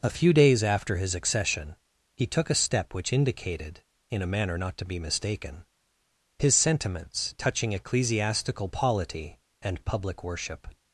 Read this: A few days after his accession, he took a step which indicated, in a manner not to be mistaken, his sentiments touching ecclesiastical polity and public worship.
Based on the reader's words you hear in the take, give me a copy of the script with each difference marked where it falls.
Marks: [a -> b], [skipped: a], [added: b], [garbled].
A few days after his accession, he took a step which indicated, in a manner not to be mistaken, his sentiments touching ecclesiastical polity and public worship.